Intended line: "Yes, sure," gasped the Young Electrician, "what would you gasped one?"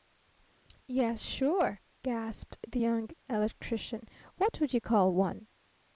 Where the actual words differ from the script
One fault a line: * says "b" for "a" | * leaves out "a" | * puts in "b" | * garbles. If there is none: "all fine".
* says "call" for "gasped"